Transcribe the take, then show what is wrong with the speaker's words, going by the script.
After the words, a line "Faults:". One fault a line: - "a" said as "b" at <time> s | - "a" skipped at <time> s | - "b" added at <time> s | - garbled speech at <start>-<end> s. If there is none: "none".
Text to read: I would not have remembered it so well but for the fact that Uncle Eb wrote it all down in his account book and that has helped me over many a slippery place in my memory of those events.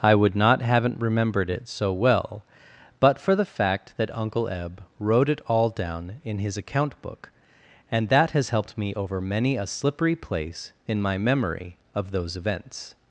I would not haven't remembered it so well but for the fact that Uncle Eb wrote it all down in his account book and that has helped me over many a slippery place in my memory of those events.
Faults:
- "have" said as "haven't" at 0.6 s